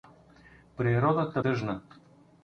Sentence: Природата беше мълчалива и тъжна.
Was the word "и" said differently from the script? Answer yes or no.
yes